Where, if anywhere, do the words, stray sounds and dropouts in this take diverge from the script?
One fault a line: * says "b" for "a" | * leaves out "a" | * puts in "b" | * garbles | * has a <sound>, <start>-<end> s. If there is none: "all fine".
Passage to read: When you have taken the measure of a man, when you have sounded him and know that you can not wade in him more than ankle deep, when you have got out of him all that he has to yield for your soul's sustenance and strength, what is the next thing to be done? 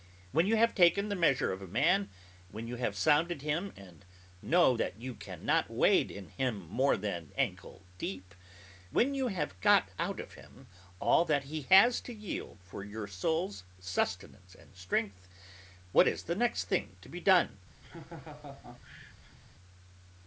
* has a laugh, 17.8-19.4 s